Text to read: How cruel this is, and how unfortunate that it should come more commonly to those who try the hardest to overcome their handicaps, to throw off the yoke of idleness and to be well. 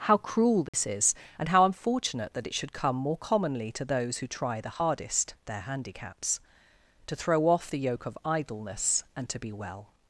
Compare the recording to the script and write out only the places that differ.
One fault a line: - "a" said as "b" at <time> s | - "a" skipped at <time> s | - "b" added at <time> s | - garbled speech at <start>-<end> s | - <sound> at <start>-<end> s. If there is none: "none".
- dropout at 0.7-0.7 s
- "to overcome" skipped at 5.3 s